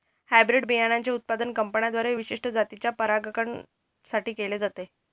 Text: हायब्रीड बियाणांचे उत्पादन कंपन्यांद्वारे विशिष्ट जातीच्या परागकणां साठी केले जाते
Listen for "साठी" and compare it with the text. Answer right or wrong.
right